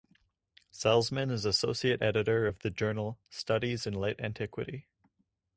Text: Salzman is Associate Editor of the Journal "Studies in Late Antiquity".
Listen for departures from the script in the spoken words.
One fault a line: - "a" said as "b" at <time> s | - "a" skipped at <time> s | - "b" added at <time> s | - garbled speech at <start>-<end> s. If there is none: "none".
none